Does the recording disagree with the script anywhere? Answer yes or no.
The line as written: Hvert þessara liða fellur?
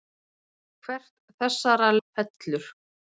yes